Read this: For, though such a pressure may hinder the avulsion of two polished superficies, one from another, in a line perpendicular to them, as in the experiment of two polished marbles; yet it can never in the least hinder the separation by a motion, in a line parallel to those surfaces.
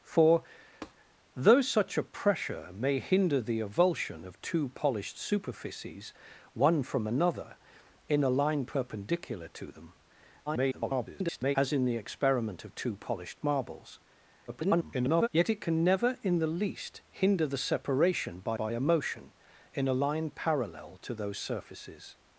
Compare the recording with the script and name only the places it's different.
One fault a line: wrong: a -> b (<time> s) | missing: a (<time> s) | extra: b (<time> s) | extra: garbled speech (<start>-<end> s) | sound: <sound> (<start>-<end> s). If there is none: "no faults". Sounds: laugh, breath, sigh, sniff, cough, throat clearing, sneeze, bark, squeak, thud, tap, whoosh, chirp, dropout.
sound: tap (0.8-0.9 s)
extra: garbled speech (10.5-11.6 s)
extra: garbled speech (14.5-15.3 s)
extra: by (18.5 s)